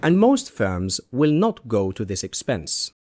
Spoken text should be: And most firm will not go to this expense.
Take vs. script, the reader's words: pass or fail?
fail